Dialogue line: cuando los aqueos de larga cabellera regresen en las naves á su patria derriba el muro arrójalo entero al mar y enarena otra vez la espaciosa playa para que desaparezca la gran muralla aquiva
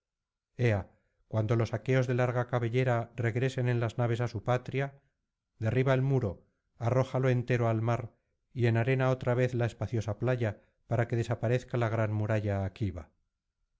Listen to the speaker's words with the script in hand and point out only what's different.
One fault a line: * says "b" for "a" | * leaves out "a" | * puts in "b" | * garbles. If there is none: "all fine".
all fine